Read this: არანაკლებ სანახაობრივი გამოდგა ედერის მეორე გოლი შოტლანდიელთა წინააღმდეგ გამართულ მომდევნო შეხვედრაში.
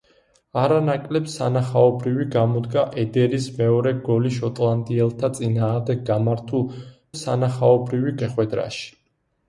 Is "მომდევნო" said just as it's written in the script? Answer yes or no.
no